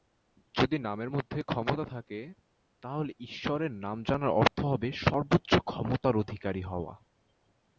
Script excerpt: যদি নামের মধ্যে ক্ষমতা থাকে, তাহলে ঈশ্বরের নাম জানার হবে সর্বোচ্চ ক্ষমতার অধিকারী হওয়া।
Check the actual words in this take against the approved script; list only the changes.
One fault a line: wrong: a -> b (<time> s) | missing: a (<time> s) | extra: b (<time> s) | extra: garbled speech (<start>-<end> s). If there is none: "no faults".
extra: অর্থ (4.4 s)